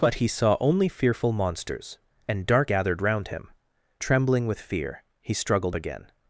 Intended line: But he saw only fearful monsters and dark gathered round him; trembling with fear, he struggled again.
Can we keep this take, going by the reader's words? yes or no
yes